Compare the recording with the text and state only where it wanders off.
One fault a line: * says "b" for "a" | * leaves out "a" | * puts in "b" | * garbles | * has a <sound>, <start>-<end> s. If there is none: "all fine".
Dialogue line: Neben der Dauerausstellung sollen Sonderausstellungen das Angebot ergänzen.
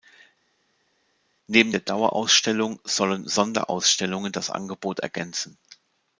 all fine